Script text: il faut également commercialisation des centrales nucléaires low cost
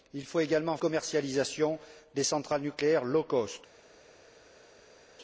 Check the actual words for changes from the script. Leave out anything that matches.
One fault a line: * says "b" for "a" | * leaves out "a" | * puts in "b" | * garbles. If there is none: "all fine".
all fine